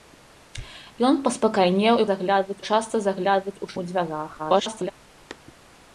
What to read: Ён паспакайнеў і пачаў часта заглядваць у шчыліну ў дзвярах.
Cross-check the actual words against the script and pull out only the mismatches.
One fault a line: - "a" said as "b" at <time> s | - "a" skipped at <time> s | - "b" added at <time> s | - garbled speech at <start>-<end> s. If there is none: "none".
- "пачаў" said as "заглядваць" at 2.1 s
- "шчыліну" skipped at 3.7 s
- garbled speech at 4.4-4.9 s